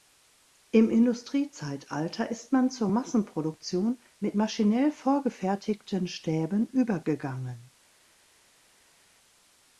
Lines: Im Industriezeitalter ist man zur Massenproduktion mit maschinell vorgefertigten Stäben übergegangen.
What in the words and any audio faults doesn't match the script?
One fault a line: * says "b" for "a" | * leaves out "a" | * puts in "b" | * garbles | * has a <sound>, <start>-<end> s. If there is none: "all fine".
all fine